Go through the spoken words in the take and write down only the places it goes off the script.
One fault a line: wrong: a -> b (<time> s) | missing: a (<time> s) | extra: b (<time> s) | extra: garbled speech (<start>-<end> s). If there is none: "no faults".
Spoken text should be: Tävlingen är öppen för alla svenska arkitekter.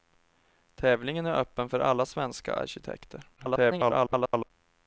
extra: garbled speech (3.4-4.5 s)